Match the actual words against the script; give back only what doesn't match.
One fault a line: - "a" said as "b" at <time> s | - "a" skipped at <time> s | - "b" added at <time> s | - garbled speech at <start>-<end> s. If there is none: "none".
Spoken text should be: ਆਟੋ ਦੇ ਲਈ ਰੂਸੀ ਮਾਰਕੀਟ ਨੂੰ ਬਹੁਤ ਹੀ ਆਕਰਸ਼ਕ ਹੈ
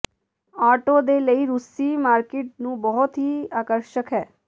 none